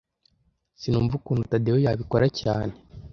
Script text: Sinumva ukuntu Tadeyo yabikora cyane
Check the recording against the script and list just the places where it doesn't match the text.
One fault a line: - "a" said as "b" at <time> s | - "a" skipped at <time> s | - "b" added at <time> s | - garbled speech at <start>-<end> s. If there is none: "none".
none